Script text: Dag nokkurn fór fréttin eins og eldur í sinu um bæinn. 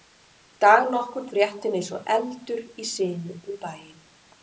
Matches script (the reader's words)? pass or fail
fail